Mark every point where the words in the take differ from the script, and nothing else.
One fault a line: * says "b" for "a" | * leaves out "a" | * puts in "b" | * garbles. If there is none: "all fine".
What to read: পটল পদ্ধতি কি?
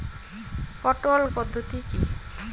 all fine